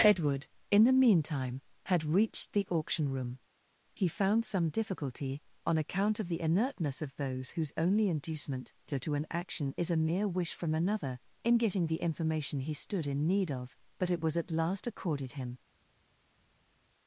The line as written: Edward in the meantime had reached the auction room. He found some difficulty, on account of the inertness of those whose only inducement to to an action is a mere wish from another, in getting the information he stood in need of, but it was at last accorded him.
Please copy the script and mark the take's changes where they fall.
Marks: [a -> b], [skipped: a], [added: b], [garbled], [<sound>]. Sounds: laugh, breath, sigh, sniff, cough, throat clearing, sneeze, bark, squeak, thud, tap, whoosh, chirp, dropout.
Edward in the meantime had reached the auction room. He found some difficulty, on account of the inertness of those whose only inducement to to an action is a mere wish from another, in getting the information he stood in need of, but it was at last accorded him.